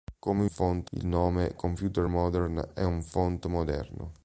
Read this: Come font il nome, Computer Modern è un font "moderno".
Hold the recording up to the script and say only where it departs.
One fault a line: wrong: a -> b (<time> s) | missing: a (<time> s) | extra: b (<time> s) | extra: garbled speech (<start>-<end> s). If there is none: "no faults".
no faults